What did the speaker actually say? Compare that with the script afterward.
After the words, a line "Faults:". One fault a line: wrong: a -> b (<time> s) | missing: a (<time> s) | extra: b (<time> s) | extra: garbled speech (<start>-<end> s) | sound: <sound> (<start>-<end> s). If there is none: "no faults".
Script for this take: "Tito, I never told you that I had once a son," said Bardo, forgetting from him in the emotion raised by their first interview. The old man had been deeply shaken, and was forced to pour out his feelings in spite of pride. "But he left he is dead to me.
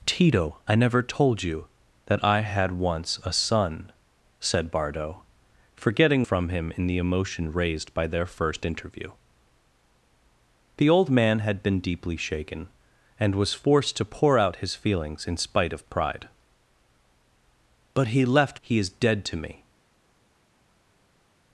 "Tito, I never told you that I had once a son," said Bardo, forgetting from him in the emotion raised by their first interview. The old man had been deeply shaken, and was forced to pour out his feelings in spite of pride. "But he left he is dead to me.
Faults:
no faults